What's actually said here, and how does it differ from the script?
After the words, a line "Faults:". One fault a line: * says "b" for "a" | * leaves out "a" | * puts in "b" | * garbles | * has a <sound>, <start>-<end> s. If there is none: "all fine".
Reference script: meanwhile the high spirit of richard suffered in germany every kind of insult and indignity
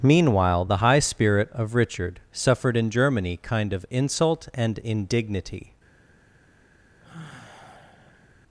meanwhile the high spirit of richard suffered in germany kind of insult and indignity
Faults:
* leaves out "every"
* has a sigh, 7.0-8.3 s